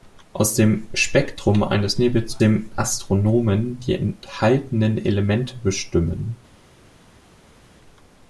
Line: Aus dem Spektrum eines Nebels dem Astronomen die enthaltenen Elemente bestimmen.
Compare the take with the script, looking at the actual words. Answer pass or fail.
pass